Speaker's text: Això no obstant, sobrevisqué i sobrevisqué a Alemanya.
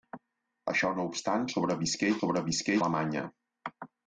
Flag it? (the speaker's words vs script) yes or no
no